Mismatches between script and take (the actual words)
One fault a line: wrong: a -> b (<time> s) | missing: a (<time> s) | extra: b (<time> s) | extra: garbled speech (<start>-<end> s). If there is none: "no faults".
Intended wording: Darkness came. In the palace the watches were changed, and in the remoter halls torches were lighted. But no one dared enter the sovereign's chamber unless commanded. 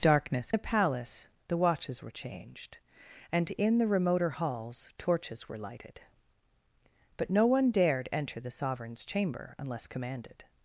missing: came In (0.5 s)